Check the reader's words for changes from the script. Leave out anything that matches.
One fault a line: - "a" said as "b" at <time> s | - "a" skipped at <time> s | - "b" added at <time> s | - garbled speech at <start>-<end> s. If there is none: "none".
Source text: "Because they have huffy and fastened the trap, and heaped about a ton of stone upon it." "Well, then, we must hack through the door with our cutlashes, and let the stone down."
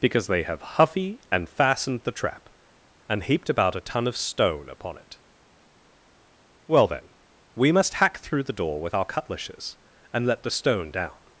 none